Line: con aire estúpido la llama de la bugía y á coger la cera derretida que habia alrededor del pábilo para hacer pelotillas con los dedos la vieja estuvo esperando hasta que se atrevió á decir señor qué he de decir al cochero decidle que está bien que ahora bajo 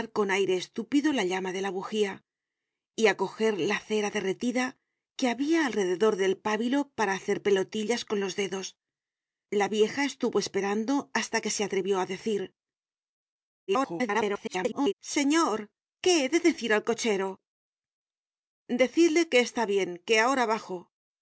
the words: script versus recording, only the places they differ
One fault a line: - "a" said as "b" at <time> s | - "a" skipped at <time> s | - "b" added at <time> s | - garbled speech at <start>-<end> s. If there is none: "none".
- garbled speech at 13.7-14.9 s